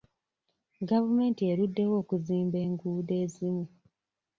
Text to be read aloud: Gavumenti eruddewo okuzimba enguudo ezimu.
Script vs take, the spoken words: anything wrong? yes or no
no